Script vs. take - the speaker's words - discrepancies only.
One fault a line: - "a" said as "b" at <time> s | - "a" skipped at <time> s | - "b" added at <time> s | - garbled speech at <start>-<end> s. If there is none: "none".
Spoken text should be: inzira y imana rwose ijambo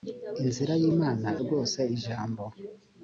none